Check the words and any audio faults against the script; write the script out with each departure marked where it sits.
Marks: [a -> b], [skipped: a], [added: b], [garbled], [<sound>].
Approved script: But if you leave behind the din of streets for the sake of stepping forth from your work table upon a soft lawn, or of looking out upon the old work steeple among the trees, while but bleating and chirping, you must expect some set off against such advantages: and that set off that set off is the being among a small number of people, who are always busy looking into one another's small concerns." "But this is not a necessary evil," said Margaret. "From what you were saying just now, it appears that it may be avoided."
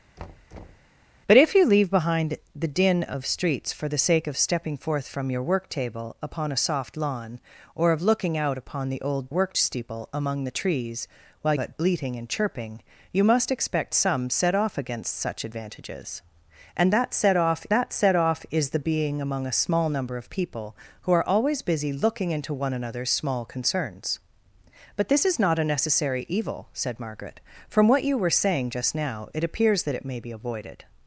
[thud] But if you leave behind the din of streets for the sake of stepping forth from your work table upon a soft lawn, or of looking out upon the old work steeple among the trees, while but bleating and chirping, you must expect some set off against such advantages: and that set off that set off is the being among a small number of people, who are always busy looking into one another's small concerns." "But this is not a necessary evil," said Margaret. "From what you were saying just now, it appears that it may be avoided."